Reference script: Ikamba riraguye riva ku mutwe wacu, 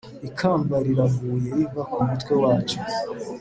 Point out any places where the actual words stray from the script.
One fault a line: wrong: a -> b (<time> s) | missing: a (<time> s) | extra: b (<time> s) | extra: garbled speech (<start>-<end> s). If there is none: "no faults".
no faults